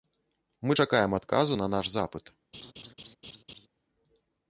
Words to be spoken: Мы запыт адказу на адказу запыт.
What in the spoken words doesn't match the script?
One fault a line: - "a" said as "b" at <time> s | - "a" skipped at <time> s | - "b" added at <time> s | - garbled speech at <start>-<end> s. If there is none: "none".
- "запыт" said as "чакаем" at 0.7 s
- "адказу" said as "наш" at 1.7 s